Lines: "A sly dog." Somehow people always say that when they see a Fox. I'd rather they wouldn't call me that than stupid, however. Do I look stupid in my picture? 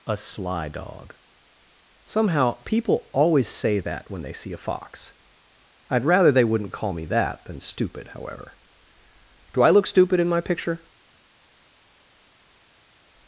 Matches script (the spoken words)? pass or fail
pass